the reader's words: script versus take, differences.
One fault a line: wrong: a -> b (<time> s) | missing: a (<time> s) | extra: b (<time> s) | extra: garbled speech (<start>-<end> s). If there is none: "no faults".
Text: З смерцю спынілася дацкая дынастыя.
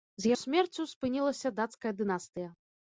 no faults